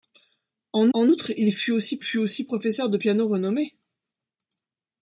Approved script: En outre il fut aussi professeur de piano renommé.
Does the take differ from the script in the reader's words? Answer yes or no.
yes